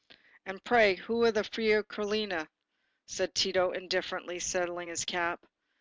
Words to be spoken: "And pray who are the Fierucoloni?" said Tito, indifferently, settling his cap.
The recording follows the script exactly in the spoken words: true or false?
true